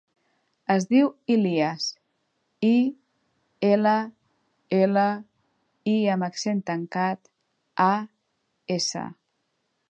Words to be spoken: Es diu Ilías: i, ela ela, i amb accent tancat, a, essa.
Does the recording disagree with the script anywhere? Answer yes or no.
no